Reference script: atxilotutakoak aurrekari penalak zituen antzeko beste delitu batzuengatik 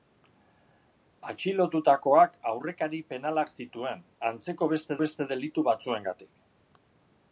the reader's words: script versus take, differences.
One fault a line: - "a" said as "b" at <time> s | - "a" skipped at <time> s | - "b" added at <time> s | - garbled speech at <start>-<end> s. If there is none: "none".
- "beste" added at 5.0 s